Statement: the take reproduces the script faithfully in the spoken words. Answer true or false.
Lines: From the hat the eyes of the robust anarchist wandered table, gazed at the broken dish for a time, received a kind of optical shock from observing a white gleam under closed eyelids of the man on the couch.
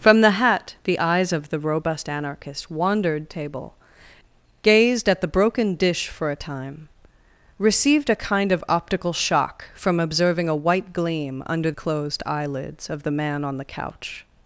true